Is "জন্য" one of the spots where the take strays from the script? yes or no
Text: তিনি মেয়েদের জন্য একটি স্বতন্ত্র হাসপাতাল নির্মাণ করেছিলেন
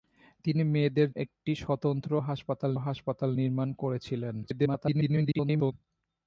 yes